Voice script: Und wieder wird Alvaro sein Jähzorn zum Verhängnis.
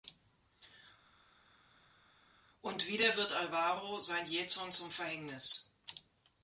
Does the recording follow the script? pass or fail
pass